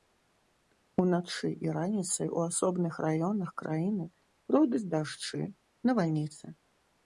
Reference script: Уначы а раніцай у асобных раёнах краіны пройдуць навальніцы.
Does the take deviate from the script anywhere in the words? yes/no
yes